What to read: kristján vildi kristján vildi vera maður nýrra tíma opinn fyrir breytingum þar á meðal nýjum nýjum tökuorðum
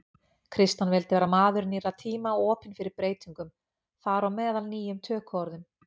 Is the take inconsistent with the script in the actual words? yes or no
yes